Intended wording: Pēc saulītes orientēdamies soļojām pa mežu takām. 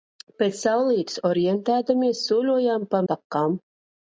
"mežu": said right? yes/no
no